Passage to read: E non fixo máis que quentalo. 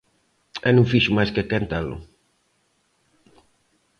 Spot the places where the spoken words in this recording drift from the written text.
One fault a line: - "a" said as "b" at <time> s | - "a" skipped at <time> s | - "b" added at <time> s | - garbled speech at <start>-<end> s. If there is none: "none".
none